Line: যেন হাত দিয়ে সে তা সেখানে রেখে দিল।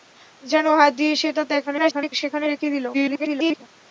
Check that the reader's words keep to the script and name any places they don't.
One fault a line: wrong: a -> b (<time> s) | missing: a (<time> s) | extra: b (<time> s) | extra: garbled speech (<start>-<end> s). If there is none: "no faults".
extra: garbled speech (1.7-2.1 s)
extra: garbled speech (2.9-3.6 s)